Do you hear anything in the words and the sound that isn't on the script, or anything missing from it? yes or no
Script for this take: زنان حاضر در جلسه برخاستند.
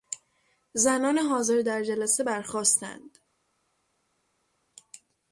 no